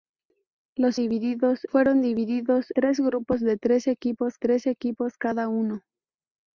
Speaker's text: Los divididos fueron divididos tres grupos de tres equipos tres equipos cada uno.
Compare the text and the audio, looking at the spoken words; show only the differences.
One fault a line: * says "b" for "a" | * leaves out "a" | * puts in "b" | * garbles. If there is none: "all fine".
all fine